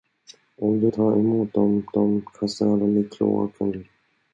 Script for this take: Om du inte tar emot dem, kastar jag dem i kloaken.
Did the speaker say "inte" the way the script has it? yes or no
no